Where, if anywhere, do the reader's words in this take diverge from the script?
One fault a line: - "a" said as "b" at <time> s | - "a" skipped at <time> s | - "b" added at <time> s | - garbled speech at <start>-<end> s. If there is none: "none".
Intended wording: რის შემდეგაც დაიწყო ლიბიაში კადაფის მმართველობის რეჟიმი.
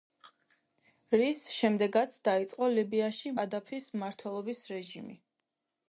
none